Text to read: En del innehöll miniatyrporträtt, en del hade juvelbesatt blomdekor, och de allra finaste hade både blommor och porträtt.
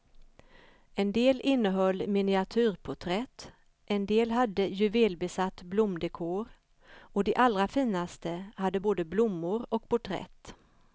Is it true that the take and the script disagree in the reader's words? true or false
false